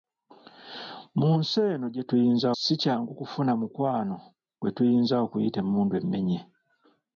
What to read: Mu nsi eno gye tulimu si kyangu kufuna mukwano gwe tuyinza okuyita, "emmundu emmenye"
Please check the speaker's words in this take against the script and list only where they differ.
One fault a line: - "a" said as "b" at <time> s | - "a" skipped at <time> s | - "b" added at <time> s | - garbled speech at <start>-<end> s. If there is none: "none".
- "tulimu" said as "tuyinza" at 2.1 s